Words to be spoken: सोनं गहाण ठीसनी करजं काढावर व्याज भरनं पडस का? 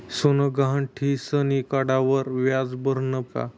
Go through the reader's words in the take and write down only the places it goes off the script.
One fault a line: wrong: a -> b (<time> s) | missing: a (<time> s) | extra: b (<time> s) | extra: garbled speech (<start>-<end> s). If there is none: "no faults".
missing: करजं (1.6 s)
missing: पडस (3.2 s)